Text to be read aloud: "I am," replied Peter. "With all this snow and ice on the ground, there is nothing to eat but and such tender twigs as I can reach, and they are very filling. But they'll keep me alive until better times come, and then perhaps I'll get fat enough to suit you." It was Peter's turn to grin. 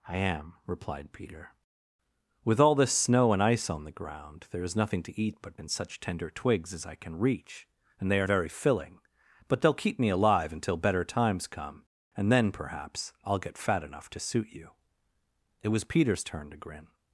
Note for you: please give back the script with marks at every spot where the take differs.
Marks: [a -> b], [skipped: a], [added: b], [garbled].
"I am," replied Peter. "With all this snow and ice on the ground, there is nothing to eat but and such tender twigs as I can reach, and they are very filling. But they'll keep me alive until better times come, and then perhaps I'll get fat enough to suit you." It was Peter's turn to grin.